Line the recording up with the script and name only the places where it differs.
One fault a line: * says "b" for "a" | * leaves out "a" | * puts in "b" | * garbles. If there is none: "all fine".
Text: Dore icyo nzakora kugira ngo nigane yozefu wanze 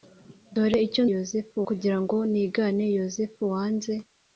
* says "yozefu" for "nzakora"